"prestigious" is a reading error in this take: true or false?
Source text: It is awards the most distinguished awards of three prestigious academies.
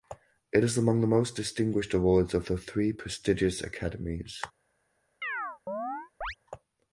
false